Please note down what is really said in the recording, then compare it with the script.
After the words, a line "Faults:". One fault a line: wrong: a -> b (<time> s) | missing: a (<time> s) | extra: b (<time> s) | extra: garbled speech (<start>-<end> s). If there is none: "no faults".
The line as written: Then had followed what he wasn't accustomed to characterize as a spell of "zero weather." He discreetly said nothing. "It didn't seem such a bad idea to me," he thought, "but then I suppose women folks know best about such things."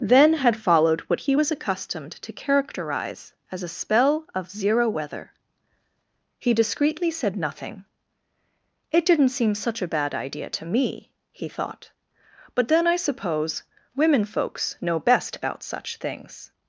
Then had followed what he was accustomed to characterize as a spell of "zero weather." He discreetly said nothing. "It didn't seem such a bad idea to me," he thought, "but then I suppose women folks know best about such things."
Faults:
wrong: wasn't -> was (1.3 s)